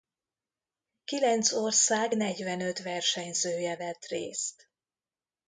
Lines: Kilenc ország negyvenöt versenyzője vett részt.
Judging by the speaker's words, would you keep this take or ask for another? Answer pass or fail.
pass